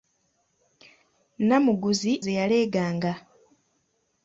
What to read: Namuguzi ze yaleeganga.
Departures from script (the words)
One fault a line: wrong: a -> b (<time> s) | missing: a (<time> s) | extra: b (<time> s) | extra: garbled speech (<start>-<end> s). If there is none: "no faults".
no faults